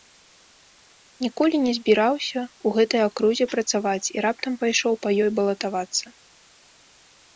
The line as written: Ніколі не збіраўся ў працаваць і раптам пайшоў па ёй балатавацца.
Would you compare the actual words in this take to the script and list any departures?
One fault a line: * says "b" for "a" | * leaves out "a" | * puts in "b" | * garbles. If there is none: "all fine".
* puts in "гэтай акрузе"